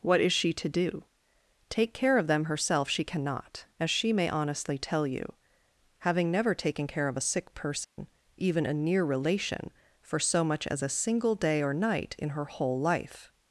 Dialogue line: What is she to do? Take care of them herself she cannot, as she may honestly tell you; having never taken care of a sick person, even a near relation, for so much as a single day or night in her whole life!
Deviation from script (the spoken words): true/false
false